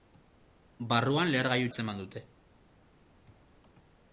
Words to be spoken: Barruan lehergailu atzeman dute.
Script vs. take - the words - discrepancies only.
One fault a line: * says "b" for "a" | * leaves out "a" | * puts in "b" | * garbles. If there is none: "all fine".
all fine